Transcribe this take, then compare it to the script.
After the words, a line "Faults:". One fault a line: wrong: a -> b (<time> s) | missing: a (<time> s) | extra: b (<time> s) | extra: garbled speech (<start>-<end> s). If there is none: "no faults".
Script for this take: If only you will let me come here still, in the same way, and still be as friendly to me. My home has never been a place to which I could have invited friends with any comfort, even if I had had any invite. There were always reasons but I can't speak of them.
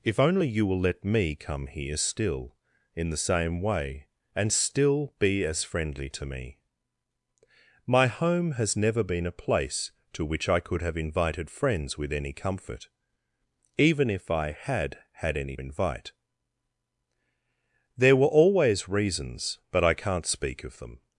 If only you will let me come here still, in the same way, and still be as friendly to me. My home has never been a place to which I could have invited friends with any comfort, even if I had had any invite. There were always reasons but I can't speak of them.
Faults:
no faults